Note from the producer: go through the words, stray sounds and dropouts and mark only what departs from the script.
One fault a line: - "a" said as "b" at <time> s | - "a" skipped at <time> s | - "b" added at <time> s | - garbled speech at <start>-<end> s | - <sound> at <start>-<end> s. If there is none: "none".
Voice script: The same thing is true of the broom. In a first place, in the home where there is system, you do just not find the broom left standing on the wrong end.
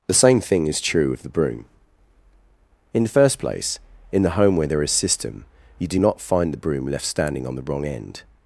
- "a" said as "the" at 3.0 s
- "just" skipped at 6.0 s